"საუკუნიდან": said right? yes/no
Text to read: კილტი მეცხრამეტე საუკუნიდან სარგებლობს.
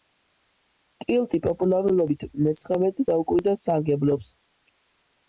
yes